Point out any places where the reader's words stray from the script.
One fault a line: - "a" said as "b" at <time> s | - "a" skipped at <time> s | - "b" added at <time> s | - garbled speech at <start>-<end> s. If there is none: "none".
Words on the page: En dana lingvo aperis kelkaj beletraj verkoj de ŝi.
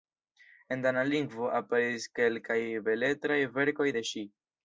none